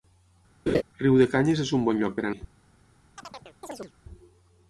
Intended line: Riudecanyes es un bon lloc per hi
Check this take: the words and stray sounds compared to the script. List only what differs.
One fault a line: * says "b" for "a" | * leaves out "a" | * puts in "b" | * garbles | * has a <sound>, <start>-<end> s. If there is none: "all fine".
* has a laugh, 0.7-0.8 s
* has a chirp, 3.2-3.9 s